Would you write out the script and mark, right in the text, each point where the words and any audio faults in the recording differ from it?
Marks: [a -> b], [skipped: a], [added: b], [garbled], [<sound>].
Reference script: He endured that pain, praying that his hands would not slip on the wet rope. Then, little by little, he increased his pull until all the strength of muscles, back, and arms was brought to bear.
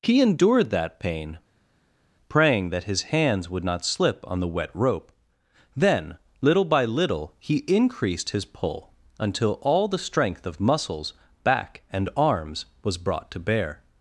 He endured that pain, praying that his hands would not slip on the wet rope. Then, little by little, he increased his pull until all the strength of muscles, back, and arms was brought to bear.